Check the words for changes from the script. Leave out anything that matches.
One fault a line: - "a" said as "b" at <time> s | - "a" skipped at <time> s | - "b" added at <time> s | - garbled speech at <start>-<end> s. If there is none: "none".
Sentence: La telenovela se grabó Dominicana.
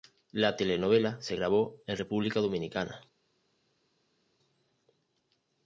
- "en República" added at 1.9 s